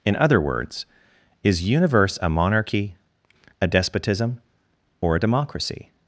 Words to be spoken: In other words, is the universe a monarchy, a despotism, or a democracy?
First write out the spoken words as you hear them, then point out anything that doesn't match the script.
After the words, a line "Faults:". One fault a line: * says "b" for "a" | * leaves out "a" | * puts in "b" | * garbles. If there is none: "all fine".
In other words, is universe a monarchy, a despotism, or a democracy?
Faults:
* leaves out "the"